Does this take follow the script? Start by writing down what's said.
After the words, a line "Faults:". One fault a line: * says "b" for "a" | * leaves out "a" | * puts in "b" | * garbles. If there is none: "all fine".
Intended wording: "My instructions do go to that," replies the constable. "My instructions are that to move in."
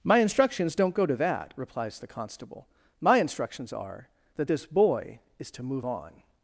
"My instructions don't go to that," replies the constable. "My instructions are that this boy is to move on."
Faults:
* says "don't" for "do"
* puts in "this boy is"
* says "on" for "in"